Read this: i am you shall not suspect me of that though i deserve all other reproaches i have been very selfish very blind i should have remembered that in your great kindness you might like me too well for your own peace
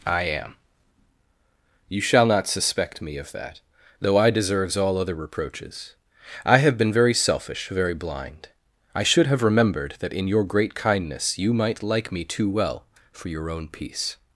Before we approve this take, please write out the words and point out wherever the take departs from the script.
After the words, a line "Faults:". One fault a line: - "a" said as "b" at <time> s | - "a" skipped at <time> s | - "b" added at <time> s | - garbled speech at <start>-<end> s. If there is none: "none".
i am you shall not suspect me of that though i deserves all other reproaches i have been very selfish very blind i should have remembered that in your great kindness you might like me too well for your own peace
Faults:
- "deserve" said as "deserves" at 4.3 s